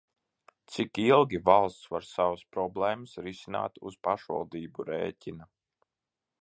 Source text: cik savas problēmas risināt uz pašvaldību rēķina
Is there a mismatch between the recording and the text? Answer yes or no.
yes